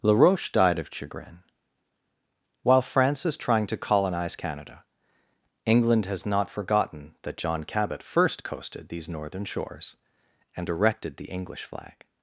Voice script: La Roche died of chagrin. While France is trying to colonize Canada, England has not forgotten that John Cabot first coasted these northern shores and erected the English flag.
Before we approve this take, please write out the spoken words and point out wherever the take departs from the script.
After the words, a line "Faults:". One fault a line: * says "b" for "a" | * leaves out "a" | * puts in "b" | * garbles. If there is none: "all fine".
La Roche died of chagrin. While France is trying to colonize Canada, England has not forgotten that John Cabot first coasted these northern shores and erected the English flag.
Faults:
all fine